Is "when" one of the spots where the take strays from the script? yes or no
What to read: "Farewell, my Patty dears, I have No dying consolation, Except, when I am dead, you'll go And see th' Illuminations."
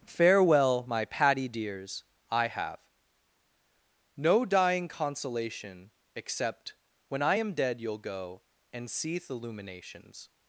no